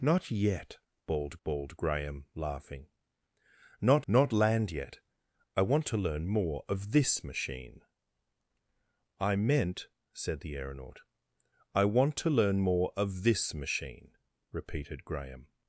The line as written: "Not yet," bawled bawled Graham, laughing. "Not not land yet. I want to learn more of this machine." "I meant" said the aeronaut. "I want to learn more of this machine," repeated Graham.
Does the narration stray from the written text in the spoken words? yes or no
no